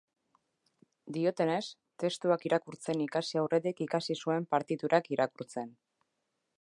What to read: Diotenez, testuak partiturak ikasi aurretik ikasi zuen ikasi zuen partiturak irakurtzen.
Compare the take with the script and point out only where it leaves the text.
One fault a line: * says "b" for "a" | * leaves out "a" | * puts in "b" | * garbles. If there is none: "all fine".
* says "irakurtzen" for "partiturak"
* leaves out "ikasi zuen"